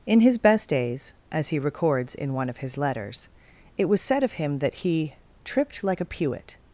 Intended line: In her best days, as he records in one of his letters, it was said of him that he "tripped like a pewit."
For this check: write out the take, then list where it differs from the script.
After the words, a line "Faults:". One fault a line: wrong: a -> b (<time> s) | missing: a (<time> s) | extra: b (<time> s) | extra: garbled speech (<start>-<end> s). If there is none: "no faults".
In his best days, as he records in one of his letters, it was said of him that he "tripped like a pewit."
Faults:
wrong: her -> his (0.2 s)